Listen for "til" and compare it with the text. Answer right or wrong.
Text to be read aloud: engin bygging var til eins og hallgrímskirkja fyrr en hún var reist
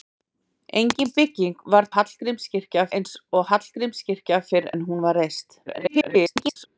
wrong